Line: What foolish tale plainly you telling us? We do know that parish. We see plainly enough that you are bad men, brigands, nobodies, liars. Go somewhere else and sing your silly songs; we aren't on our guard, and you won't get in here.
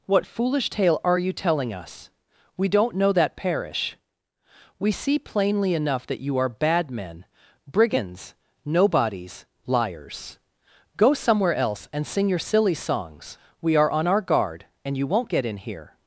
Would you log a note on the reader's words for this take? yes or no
yes